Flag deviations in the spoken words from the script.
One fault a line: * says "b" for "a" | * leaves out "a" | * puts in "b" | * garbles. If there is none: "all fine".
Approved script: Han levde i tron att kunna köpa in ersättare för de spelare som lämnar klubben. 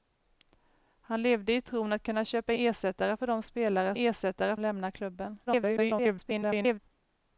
* leaves out "in"
* says "ersättare" for "som"
* garbles